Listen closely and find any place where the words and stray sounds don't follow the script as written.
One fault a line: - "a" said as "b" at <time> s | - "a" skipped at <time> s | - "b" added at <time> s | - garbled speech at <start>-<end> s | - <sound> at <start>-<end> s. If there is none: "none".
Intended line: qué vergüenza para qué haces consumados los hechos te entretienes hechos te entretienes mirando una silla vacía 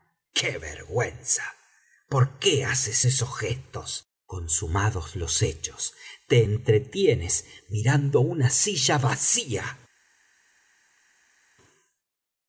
- "para" said as "por" at 2.1 s
- "esos gestos" added at 3.0 s
- "hechos te entretienes" skipped at 7.4 s